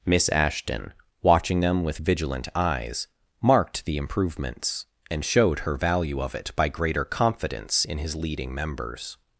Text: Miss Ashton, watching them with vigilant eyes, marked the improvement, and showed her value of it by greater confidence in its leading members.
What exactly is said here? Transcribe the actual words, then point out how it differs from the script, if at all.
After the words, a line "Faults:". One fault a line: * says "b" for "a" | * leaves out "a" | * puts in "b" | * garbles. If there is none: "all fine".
Miss Ashton, watching them with vigilant eyes, marked the improvements, and showed her value of it by greater confidence in his leading members.
Faults:
* says "improvements" for "improvement"
* says "his" for "its"